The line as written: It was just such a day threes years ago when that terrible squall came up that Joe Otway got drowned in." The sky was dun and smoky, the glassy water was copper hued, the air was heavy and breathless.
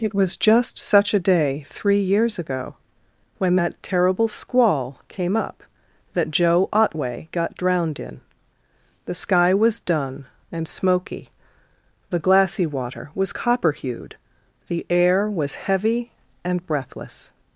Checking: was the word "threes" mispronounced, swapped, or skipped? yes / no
yes